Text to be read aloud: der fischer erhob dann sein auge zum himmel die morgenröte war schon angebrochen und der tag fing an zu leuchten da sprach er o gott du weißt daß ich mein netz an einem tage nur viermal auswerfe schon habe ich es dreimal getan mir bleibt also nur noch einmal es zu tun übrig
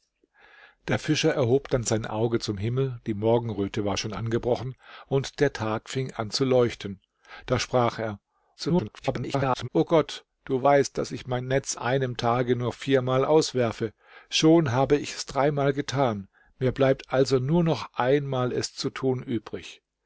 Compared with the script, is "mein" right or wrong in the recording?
right